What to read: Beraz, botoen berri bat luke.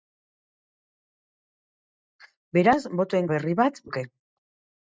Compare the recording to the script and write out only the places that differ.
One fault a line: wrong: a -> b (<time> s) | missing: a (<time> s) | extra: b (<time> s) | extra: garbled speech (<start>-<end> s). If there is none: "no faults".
no faults